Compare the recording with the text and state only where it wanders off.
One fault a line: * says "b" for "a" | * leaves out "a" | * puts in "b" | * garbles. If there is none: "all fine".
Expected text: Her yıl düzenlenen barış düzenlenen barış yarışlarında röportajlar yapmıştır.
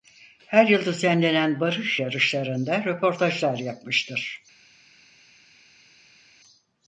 * leaves out "düzenlenen barış"